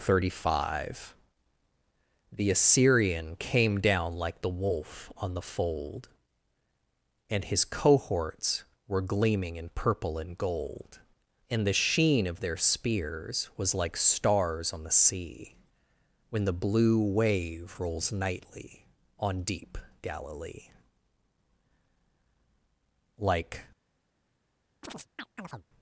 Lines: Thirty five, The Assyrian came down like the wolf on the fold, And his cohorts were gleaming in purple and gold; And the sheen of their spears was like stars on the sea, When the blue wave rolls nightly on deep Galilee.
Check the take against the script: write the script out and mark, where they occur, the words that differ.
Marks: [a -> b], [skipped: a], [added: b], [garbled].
Thirty five, The Assyrian came down like the wolf on the fold, And his cohorts were gleaming in purple and gold; And the sheen of their spears was like stars on the sea, When the blue wave rolls nightly on deep Galilee. [added: Like]